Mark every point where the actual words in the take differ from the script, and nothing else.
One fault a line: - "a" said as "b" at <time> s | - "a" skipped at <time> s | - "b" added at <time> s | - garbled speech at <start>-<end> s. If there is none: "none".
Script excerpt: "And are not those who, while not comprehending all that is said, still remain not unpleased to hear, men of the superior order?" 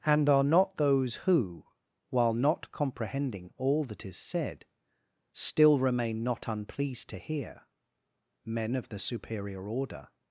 none